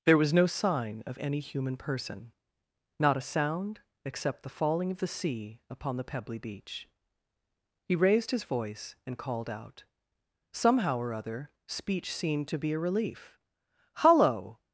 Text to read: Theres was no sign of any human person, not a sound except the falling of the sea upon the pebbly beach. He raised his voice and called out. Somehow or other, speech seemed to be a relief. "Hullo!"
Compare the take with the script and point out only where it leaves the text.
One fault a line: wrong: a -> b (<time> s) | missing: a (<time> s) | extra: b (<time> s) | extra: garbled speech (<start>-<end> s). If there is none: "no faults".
wrong: Theres -> There (0.1 s)